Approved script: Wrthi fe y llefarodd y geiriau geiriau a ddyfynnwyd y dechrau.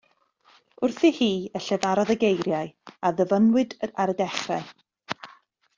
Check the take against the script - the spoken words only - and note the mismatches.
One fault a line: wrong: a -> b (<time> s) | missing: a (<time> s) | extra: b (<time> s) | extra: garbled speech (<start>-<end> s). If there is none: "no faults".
wrong: fe -> hi (1.2 s)
missing: geiriau (2.7 s)
extra: ar (4.0 s)